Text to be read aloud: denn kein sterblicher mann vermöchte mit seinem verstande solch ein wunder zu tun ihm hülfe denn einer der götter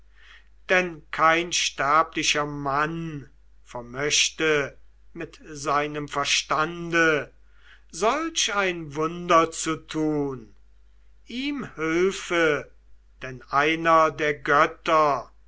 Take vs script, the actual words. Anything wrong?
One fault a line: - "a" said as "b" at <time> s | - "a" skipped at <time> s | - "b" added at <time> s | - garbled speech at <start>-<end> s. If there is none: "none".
none